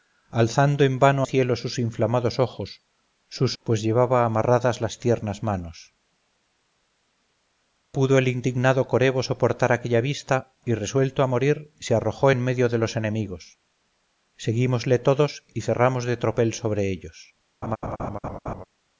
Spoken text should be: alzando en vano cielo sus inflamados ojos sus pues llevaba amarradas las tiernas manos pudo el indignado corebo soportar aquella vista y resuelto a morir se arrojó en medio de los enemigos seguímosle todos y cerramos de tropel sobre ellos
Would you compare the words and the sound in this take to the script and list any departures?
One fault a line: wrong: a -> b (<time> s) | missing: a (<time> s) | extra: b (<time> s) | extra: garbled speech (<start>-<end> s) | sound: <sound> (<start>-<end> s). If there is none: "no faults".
sound: laugh (17.6-18.6 s)